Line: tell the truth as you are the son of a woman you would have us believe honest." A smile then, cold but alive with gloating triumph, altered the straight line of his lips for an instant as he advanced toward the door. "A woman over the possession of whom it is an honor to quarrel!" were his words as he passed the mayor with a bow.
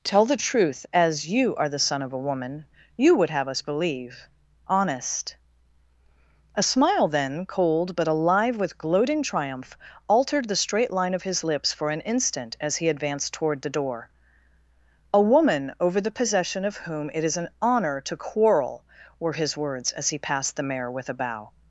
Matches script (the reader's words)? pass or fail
pass